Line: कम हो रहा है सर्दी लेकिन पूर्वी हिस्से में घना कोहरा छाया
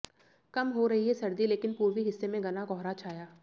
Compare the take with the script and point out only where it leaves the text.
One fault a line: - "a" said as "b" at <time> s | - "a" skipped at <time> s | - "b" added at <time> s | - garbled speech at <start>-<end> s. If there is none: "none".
- "रहा" said as "रही" at 0.9 s